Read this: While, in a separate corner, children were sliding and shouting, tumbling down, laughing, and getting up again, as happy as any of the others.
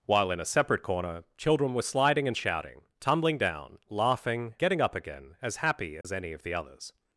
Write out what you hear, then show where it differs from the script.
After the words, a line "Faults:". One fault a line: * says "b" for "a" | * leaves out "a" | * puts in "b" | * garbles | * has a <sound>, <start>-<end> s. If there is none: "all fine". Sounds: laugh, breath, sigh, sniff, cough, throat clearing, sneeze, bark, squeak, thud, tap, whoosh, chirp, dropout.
While, in a separate corner, children were sliding and shouting, tumbling down, laughing, getting up again, as happy as any of the others.
Faults:
* leaves out "and"
* has a dropout, 6.0-6.0 s